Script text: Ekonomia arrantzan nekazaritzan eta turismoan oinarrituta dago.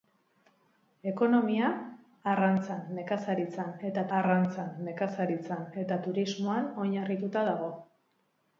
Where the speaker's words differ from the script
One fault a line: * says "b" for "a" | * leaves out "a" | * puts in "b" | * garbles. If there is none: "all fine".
* puts in "arrantzan nekazaritzan eta"